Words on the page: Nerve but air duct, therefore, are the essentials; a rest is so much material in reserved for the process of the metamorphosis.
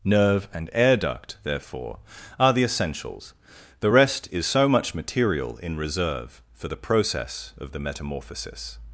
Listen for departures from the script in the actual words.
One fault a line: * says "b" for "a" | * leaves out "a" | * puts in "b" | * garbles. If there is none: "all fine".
* says "and" for "but"
* says "the" for "a"
* says "reserve" for "reserved"